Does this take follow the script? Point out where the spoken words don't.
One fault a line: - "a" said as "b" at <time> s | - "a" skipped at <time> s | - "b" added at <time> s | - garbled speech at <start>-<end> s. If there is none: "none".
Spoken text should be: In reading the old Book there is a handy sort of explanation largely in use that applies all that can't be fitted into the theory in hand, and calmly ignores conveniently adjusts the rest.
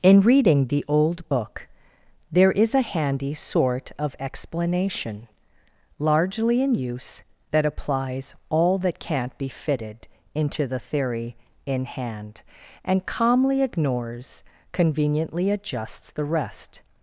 none